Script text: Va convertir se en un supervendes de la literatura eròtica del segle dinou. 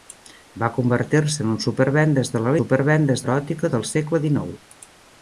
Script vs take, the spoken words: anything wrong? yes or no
yes